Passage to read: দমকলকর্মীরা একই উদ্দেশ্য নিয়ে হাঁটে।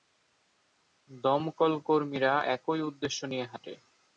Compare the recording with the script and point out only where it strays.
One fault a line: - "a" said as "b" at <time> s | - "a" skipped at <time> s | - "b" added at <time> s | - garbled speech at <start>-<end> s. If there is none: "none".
none